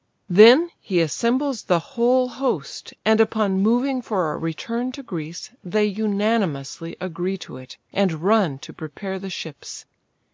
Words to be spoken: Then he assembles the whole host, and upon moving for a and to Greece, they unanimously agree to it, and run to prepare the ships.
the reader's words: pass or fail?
fail